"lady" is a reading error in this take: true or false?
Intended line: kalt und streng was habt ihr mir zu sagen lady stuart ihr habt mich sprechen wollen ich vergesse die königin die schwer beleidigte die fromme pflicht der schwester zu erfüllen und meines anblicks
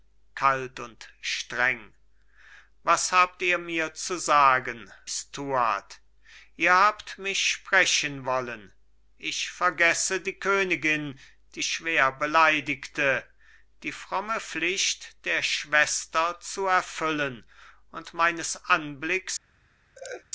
true